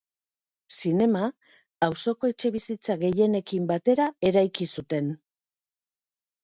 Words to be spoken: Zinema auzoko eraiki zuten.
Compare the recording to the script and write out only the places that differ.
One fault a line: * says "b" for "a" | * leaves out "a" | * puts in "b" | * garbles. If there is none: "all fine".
* puts in "etxebizitza gehienekin batera"